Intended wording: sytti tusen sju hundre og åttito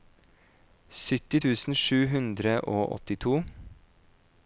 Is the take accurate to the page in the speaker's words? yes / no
yes